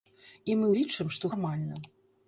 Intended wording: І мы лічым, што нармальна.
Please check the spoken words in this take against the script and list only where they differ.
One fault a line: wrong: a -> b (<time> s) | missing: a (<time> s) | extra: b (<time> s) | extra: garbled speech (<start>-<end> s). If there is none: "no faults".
no faults